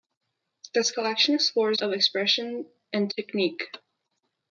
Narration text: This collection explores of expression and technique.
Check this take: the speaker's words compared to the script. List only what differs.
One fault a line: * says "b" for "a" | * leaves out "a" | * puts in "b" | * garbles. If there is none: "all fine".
all fine